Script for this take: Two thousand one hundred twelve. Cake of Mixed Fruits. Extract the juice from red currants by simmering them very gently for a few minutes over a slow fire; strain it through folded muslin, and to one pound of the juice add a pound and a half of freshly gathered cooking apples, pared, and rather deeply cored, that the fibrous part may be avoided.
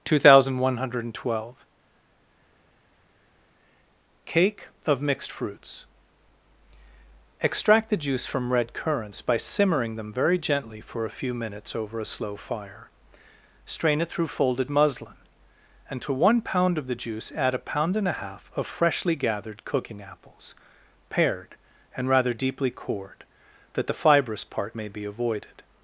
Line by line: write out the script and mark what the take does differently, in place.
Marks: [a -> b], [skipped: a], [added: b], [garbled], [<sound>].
Two thousand one hundred twelve. Cake of Mixed Fruits. Extract the juice from red currants by simmering them very gently for a few minutes over a slow fire; strain it through folded muslin, and to one pound of the juice add a pound and a half of freshly gathered cooking apples, pared, and rather deeply cored, that the fibrous part may be avoided.